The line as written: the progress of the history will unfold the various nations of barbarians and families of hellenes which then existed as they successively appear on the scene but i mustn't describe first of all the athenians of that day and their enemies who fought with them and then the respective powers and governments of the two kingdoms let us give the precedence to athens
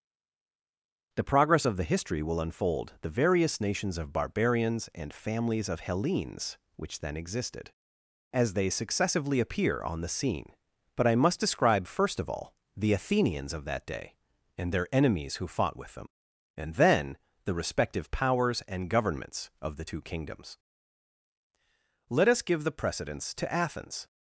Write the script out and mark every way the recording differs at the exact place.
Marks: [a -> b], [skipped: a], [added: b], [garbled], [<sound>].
the progress of the history will unfold the various nations of barbarians and families of hellenes which then existed as they successively appear on the scene but i [mustn't -> must] describe first of all the athenians of that day and their enemies who fought with them and then the respective powers and governments of the two kingdoms let us give the precedence to athens